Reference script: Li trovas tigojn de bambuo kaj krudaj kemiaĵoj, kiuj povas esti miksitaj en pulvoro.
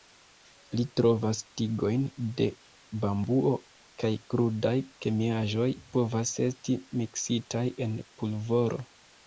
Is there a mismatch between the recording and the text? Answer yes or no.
yes